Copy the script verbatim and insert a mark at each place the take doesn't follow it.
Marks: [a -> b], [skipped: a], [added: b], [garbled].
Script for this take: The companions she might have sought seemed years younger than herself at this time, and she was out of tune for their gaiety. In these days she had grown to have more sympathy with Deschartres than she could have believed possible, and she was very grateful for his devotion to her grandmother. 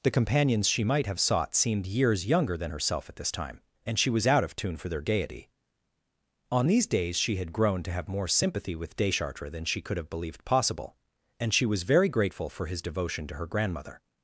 The companions she might have sought seemed years younger than herself at this time, and she was out of tune for their gaiety. [In -> On] these days she had grown to have more sympathy with Deschartres than she could have believed possible, and she was very grateful for his devotion to her grandmother.